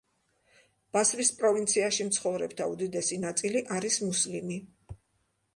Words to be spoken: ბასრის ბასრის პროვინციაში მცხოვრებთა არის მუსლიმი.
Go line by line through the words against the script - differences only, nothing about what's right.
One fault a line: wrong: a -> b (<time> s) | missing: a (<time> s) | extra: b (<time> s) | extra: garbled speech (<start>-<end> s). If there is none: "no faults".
missing: ბასრის (1.3 s)
extra: უდიდესი ნაწილი (2.7 s)